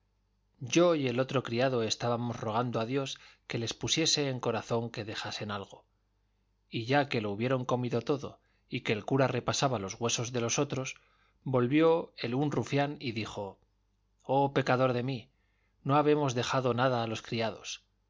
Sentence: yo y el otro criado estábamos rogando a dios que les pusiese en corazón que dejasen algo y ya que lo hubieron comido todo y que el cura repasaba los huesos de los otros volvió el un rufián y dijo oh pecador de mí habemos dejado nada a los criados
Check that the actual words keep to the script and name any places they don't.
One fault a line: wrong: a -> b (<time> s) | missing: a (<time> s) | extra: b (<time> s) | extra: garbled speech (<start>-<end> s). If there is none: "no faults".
extra: no (15.8 s)